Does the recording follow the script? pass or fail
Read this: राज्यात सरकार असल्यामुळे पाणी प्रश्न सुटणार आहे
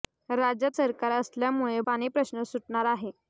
pass